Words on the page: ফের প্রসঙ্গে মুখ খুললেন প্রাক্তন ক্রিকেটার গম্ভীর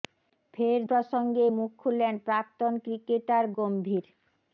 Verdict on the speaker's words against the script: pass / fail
pass